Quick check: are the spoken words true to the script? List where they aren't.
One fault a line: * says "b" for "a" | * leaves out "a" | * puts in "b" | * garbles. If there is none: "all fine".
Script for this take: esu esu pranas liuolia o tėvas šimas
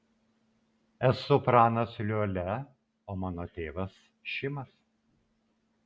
* leaves out "esu"
* puts in "mano"